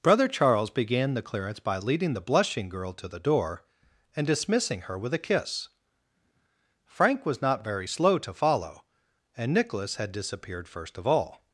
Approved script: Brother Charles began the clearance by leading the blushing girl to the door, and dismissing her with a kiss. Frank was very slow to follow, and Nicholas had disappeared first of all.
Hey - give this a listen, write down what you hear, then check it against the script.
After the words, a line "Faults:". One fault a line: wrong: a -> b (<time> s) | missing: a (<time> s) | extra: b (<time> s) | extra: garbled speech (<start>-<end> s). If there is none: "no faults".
Brother Charles began the clearance by leading the blushing girl to the door, and dismissing her with a kiss. Frank was not very slow to follow, and Nicholas had disappeared first of all.
Faults:
extra: not (7.4 s)